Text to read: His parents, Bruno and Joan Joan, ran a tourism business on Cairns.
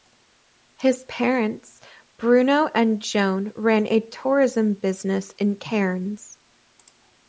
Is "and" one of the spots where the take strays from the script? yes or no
no